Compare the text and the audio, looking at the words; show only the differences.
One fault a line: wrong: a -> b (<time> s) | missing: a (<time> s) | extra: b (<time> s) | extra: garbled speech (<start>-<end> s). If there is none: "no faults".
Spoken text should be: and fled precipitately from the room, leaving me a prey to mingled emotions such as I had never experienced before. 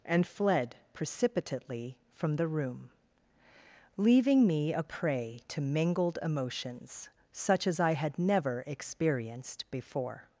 no faults